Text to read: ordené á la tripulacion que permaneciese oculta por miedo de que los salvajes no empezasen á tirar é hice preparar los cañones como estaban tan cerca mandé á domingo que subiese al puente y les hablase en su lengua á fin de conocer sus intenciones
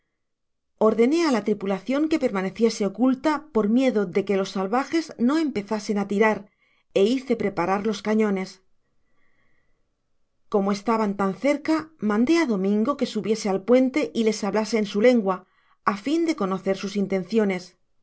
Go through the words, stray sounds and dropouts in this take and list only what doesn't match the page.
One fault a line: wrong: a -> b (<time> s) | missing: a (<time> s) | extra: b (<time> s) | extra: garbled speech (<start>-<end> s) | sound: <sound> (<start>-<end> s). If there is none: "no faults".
no faults